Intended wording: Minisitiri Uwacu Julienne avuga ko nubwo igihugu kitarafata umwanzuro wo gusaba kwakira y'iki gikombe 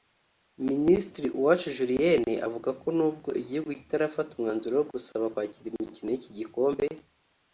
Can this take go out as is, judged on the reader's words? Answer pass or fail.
fail